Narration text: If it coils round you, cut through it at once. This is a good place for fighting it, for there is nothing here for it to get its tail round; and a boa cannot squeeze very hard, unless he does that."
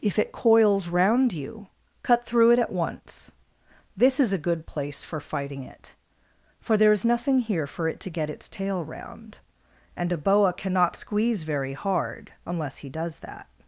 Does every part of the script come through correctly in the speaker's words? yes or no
yes